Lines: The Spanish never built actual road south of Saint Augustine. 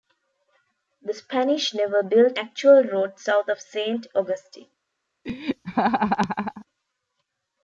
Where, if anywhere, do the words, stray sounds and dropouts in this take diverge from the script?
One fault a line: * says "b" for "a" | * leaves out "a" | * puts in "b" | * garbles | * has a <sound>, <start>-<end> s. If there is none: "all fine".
* has a laugh, 5.2-6.7 s